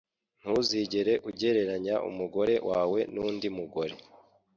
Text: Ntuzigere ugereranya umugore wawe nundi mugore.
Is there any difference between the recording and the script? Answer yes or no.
no